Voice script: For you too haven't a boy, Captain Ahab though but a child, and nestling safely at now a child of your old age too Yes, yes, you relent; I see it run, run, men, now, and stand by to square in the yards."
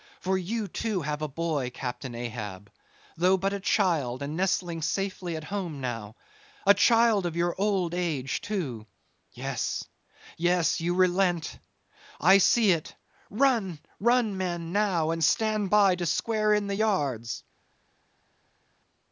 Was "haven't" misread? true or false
true